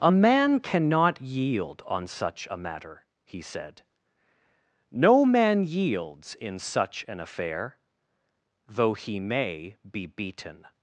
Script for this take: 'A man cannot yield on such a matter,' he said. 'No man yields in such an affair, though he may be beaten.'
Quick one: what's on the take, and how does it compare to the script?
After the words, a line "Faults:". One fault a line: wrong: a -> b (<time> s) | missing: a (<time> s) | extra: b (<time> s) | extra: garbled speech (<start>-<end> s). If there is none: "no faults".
'A man cannot yield on such a matter,' he said. 'No man yields in such an affair, though he may be beaten.'
Faults:
no faults